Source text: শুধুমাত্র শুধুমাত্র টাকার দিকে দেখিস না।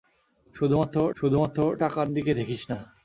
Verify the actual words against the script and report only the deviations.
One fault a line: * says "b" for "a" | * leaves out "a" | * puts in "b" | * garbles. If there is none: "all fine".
all fine